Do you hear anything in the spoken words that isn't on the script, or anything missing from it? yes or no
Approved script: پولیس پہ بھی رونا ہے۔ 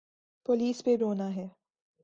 yes